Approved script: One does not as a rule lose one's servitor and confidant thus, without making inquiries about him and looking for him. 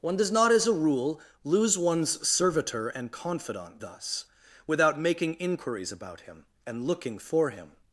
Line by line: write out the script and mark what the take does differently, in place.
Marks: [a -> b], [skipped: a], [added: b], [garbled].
One does not as a rule lose one's servitor and confidant thus, without making inquiries about him and looking for him.